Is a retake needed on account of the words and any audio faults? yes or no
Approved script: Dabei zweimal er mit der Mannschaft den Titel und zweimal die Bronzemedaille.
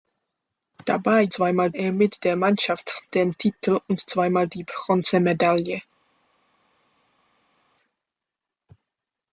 no